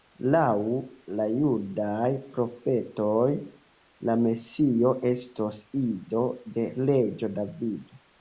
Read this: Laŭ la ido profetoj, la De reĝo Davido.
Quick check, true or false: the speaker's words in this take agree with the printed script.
false